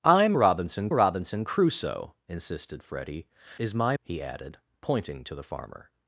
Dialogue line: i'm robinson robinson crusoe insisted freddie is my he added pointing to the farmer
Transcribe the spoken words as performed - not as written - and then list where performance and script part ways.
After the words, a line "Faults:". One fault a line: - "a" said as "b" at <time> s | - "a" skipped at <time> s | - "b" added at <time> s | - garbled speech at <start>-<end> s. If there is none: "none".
i'm robinson robinson crusoe insisted freddie is my he added pointing to the farmer
Faults:
none